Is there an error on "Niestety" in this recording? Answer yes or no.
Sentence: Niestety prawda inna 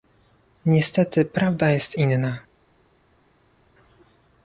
no